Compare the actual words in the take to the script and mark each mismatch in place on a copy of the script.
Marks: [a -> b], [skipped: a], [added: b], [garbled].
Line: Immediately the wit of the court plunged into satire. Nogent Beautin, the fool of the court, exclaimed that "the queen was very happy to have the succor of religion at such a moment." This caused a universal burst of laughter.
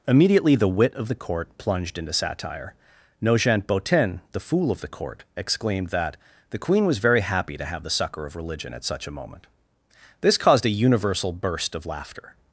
Immediately the wit of the court plunged into satire. Nogent Beautin, the fool of the court, exclaimed that "the queen was very happy to have the succor of religion at such a moment." This caused a universal burst of laughter.